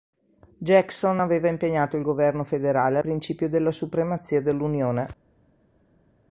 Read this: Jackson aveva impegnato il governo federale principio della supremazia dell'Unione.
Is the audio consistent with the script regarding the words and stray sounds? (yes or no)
yes